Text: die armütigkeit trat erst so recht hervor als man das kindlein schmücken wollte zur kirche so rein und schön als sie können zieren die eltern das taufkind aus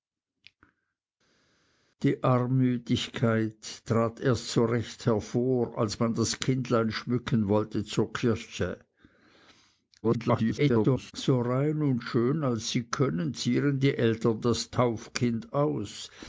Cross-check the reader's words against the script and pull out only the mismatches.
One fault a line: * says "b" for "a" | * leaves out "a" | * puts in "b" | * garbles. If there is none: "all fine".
* garbles